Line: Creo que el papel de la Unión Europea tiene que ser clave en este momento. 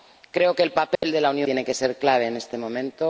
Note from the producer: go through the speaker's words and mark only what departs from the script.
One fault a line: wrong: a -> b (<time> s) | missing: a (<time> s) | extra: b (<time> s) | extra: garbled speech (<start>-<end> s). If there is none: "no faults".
missing: Europea (1.5 s)